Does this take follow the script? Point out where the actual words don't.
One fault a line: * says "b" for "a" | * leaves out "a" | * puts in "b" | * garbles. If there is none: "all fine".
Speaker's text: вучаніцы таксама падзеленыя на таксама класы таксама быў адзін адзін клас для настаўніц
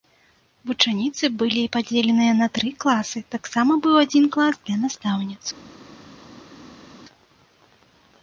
* says "былі" for "таксама"
* says "тры" for "таксама"
* leaves out "адзін"